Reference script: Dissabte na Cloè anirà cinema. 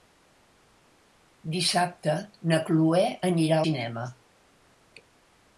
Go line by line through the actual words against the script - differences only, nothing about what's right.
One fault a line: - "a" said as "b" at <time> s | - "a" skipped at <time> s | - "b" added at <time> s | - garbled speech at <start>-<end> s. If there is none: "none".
none